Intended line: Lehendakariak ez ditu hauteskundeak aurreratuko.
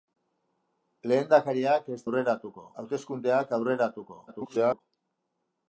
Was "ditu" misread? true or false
true